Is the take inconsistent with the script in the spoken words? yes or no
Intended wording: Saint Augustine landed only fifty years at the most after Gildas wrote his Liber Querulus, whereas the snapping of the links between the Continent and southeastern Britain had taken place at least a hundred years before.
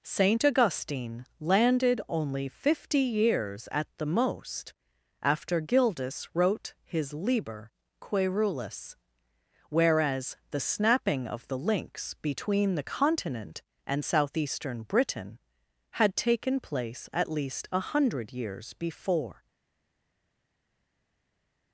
no